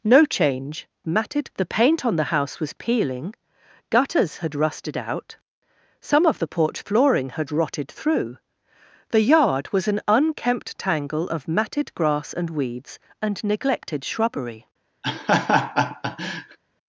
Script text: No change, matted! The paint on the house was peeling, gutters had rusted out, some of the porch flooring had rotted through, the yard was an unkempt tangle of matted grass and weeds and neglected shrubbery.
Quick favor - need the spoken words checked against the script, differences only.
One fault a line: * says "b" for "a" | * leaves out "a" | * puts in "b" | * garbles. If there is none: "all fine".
all fine